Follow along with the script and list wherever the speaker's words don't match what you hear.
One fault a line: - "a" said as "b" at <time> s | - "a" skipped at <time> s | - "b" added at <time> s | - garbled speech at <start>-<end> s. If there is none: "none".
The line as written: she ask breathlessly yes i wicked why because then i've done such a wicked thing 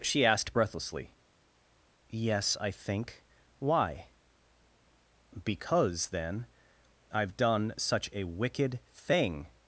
- "ask" said as "asked" at 0.2 s
- "wicked" said as "think" at 2.7 s